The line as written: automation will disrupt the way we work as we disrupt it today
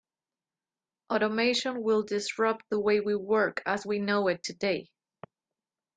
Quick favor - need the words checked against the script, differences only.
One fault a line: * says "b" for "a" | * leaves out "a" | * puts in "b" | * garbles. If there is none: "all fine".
* says "know" for "disrupt"